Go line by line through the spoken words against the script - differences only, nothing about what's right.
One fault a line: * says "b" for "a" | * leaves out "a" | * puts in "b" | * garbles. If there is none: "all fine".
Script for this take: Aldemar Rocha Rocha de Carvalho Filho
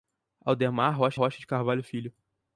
all fine